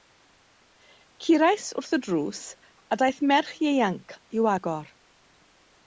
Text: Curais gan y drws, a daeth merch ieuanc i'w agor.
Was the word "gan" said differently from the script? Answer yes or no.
yes